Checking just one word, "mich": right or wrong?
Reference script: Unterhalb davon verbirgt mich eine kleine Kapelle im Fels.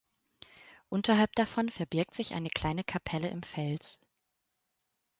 wrong